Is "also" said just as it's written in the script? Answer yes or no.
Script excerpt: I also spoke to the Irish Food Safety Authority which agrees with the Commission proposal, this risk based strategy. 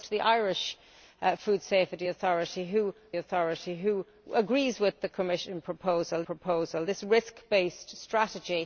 no